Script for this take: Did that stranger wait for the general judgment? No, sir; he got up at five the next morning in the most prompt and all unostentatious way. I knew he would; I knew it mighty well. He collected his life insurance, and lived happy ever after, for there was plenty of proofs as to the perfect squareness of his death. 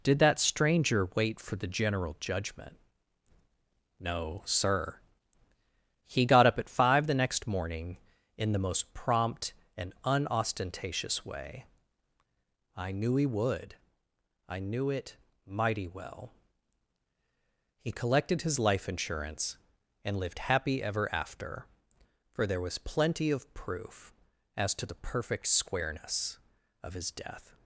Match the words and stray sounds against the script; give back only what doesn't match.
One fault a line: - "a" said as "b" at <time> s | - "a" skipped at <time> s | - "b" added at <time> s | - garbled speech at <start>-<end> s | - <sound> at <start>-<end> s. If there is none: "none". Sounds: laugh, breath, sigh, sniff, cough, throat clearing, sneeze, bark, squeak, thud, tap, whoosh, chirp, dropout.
- "all" skipped at 9.9 s
- "proofs" said as "proof" at 23.5 s